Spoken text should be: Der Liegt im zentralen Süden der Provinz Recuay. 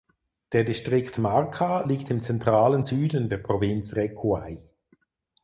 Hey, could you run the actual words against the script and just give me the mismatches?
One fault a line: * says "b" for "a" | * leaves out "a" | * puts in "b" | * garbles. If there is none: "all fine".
* puts in "Distrikt Marca"